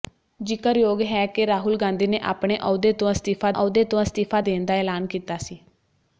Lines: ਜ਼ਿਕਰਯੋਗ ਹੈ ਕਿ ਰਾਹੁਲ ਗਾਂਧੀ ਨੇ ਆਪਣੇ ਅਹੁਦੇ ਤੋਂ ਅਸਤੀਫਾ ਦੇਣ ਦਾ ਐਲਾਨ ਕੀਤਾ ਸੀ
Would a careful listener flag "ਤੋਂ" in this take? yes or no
no